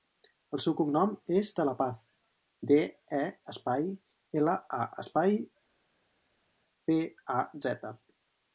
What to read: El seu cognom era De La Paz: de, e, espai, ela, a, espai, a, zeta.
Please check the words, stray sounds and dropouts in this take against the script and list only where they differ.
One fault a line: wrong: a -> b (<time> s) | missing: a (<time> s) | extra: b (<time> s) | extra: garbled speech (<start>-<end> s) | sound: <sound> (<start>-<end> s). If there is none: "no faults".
wrong: era -> és (1.4 s)
extra: pe (6.9 s)